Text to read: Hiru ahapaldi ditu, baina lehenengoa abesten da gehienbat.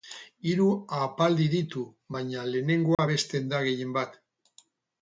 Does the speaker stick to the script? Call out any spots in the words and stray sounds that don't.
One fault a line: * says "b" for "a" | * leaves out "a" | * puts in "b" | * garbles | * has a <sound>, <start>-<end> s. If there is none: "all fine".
* has a dropout, 2.9-3.0 s